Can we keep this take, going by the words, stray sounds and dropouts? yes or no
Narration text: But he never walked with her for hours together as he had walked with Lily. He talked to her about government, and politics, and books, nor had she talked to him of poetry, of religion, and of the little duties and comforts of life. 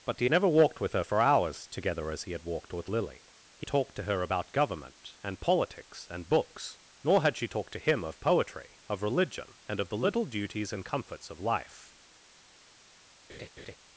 no